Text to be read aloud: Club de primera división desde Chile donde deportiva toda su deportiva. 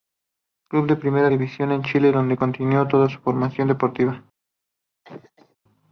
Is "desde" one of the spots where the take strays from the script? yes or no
yes